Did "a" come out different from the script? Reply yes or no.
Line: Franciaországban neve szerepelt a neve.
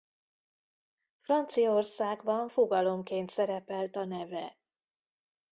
no